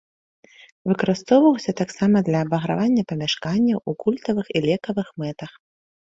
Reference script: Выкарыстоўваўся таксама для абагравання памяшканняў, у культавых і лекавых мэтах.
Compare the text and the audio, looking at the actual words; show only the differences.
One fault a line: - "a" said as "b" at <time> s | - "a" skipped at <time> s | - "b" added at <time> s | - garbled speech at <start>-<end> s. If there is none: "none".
none